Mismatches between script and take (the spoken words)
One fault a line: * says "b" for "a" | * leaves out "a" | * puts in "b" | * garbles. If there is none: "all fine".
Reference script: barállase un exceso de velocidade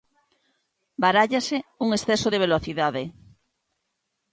all fine